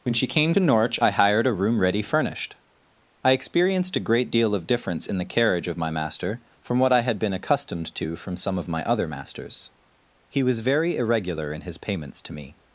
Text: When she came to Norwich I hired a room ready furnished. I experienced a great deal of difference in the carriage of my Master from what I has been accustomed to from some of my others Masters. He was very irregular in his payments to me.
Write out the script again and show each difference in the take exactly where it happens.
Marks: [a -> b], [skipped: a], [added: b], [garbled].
When she came to Norwich I hired a room ready furnished. I experienced a great deal of difference in the carriage of my Master from what I [has -> had] been accustomed to from some of my [others -> other] Masters. He was very irregular in his payments to me.